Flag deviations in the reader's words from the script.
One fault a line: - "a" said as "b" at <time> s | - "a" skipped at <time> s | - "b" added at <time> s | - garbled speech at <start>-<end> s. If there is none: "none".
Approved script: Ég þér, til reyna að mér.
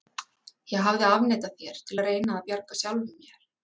- "hafði afneitað" added at 0.9 s
- "að" added at 2.0 s
- "bjarga sjálfum" added at 2.5 s